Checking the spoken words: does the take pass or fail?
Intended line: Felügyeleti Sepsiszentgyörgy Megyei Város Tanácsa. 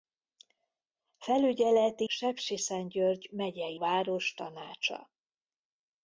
pass